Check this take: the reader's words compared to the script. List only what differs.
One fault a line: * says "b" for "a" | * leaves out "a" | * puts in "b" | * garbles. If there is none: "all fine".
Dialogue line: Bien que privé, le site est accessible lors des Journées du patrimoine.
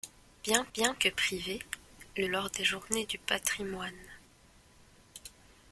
* puts in "bien"
* leaves out "site est accessible"